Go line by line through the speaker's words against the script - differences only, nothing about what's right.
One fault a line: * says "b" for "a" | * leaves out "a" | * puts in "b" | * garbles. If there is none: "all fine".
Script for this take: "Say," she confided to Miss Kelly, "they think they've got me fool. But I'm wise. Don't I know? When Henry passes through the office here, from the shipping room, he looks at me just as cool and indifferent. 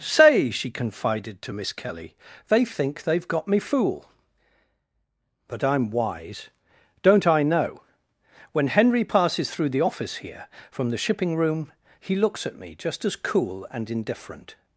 all fine